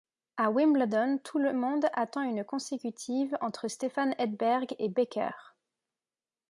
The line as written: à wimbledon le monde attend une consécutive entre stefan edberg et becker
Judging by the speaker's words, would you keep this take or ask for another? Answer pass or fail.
fail